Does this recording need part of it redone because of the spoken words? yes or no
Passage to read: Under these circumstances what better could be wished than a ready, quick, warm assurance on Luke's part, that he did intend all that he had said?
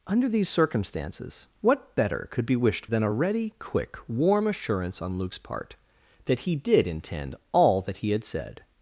no